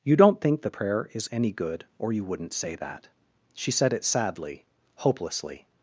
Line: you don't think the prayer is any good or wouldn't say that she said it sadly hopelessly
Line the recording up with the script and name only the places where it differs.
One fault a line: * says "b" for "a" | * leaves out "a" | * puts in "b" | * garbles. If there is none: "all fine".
* puts in "you"